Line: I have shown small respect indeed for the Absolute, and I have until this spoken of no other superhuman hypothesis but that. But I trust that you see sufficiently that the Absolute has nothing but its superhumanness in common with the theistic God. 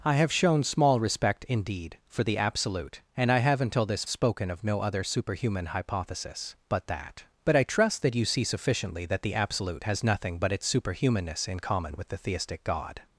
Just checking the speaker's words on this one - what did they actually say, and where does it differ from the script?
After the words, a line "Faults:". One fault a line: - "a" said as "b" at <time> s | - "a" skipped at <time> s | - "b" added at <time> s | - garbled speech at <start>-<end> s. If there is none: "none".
I have shown small respect indeed for the Absolute, and I have until this spoken of no other superhuman hypothesis but that. But I trust that you see sufficiently that the Absolute has nothing but its superhumanness in common with the theistic God.
Faults:
none